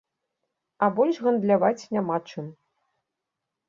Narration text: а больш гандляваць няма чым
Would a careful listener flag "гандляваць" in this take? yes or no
no